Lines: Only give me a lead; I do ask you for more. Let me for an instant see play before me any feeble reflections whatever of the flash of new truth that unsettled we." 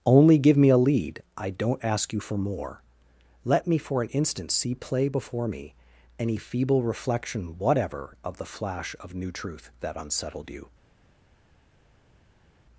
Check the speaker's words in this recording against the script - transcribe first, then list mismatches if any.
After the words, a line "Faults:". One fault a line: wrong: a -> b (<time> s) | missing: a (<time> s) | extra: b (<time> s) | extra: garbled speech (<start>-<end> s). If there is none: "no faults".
Only give me a lead; I don't ask you for more. Let me for an instant see play before me any feeble reflection whatever of the flash of new truth that unsettled you."
Faults:
wrong: do -> don't (1.5 s)
wrong: reflections -> reflection (6.8 s)
wrong: we -> you (10.5 s)